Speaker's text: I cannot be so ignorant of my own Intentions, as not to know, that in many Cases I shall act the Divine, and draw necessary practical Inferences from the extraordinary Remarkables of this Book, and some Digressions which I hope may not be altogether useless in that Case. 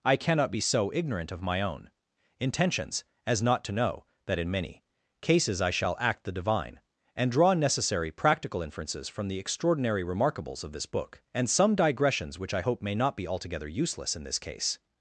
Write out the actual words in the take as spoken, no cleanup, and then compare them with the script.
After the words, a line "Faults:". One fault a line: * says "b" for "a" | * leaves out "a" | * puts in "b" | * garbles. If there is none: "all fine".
I cannot be so ignorant of my own Intentions, as not to know, that in many Cases I shall act the Divine, and draw necessary practical Inferences from the extraordinary Remarkables of this Book, and some Digressions which I hope may not be altogether useless in this Case.
Faults:
* says "this" for "that"